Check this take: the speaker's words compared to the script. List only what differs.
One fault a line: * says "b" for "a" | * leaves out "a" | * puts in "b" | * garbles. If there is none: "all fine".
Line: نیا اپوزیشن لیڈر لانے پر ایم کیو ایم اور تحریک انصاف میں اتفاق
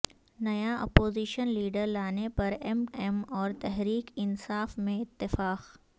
* leaves out "کیو"